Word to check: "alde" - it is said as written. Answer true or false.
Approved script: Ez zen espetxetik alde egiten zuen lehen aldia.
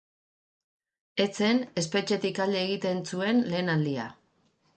true